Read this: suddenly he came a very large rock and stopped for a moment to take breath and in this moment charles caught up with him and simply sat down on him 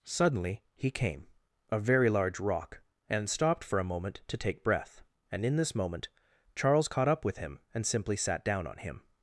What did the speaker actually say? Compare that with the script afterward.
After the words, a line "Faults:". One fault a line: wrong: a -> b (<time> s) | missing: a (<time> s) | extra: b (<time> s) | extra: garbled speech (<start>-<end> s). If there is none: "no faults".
suddenly he came a very large rock and stopped for a moment to take breath and in this moment charles caught up with him and simply sat down on him
Faults:
no faults